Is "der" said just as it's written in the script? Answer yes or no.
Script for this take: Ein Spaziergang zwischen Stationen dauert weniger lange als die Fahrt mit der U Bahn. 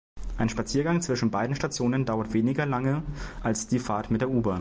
yes